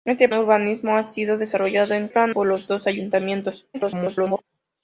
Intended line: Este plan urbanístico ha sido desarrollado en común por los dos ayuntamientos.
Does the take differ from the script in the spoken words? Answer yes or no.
yes